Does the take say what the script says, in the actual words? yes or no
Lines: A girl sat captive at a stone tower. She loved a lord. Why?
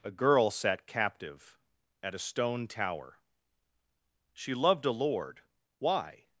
yes